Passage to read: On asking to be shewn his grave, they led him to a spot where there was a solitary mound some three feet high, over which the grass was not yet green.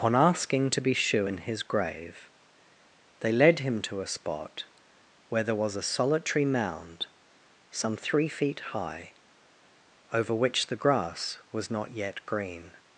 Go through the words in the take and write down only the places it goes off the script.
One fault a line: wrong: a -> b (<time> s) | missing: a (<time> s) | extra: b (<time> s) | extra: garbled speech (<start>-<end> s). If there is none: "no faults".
no faults